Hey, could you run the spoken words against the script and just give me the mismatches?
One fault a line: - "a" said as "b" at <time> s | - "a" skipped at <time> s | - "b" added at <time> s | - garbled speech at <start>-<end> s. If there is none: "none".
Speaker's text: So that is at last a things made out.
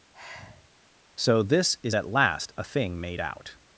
- "that" said as "this" at 1.4 s
- "things" said as "thing" at 2.6 s